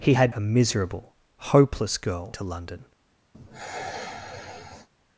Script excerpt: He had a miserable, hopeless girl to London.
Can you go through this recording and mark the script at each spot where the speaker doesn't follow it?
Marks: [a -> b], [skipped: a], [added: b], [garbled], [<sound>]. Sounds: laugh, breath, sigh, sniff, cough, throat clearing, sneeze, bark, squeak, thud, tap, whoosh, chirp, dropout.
He had a miserable, hopeless girl to London. [sigh]